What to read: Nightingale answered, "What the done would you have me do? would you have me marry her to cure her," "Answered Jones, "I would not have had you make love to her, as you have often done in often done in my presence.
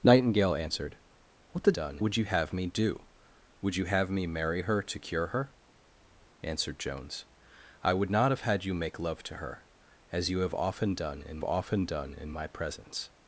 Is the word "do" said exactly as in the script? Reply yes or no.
yes